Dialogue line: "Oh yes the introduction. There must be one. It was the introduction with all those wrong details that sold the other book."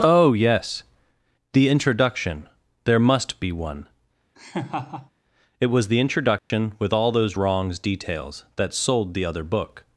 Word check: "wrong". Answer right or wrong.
wrong